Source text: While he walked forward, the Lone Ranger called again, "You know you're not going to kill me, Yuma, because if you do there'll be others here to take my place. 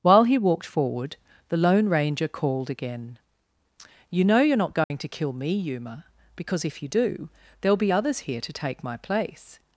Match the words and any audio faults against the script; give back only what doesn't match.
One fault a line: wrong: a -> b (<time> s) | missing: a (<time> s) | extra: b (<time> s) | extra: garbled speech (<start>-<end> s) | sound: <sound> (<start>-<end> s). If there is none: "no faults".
sound: dropout (4.8-4.9 s)